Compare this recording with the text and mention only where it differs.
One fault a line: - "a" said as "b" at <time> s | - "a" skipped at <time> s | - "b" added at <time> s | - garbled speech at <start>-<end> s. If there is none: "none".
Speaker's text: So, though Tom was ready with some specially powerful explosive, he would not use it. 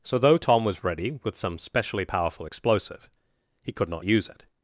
- "would" said as "could" at 3.7 s